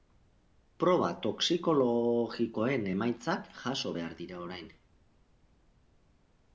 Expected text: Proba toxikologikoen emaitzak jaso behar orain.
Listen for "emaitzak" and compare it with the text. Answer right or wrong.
right